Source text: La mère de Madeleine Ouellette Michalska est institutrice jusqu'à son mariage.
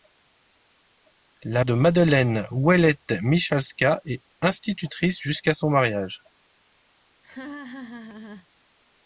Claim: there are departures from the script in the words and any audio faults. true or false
true